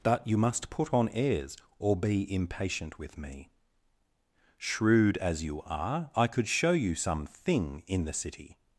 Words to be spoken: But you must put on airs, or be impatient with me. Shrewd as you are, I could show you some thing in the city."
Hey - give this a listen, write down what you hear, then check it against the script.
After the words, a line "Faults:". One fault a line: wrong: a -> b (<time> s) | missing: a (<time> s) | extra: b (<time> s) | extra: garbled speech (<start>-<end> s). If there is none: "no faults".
But you must put on airs, or be impatient with me. Shrewd as you are, I could show you some thing in the city."
Faults:
no faults